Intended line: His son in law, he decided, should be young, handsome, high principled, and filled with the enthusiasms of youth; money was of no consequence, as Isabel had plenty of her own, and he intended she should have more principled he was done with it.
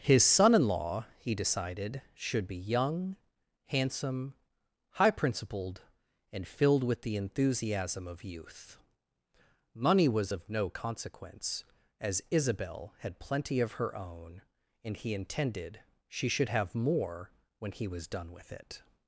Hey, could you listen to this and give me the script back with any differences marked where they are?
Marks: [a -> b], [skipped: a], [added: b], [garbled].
His son in law, he decided, should be young, handsome, high principled, and filled with the [enthusiasms -> enthusiasm] of youth; money was of no consequence, as Isabel had plenty of her own, and he intended she should have more [principled -> when] he was done with it.